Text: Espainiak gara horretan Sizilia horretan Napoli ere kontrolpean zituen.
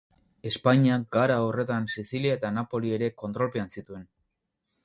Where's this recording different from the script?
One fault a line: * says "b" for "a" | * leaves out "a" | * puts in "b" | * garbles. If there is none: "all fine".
* says "eta" for "horretan"